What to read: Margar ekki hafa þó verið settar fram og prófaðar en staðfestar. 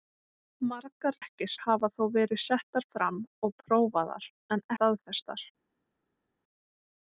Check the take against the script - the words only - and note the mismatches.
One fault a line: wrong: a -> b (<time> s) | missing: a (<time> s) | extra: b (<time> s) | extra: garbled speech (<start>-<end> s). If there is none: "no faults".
no faults